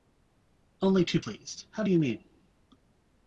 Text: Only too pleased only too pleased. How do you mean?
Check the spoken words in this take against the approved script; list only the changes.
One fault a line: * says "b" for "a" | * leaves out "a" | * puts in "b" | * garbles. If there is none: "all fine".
* leaves out "only too pleased"